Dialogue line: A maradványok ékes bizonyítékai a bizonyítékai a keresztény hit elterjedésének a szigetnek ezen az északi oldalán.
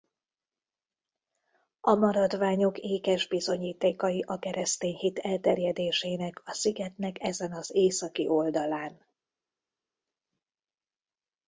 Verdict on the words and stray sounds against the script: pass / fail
fail